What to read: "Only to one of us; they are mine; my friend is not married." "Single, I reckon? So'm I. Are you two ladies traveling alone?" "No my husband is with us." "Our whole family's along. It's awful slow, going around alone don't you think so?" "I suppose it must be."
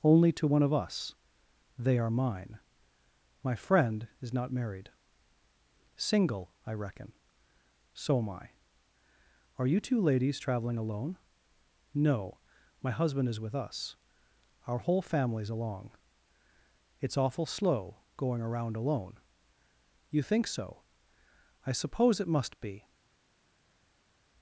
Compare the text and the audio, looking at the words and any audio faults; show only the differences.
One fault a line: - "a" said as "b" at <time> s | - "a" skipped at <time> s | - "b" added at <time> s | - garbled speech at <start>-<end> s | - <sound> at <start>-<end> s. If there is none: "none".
- "don't" skipped at 19.2 s